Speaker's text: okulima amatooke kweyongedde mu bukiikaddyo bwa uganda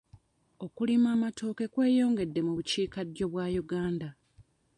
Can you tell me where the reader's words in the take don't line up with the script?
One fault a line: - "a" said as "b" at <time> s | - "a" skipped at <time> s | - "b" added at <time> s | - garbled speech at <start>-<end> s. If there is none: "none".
none